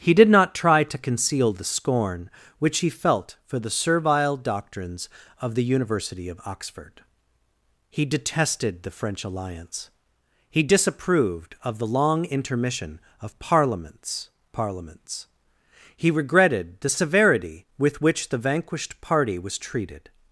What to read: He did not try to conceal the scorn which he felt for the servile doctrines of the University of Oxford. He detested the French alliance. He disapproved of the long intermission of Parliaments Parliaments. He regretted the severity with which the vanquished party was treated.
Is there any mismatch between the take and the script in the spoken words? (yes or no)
no